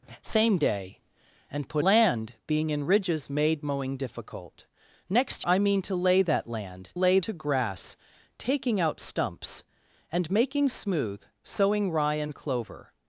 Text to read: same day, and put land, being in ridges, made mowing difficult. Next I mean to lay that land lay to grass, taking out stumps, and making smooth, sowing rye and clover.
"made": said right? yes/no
yes